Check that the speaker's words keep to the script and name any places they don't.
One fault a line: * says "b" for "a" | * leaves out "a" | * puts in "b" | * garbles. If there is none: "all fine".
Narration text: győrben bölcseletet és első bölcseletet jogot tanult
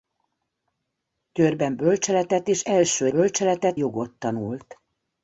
all fine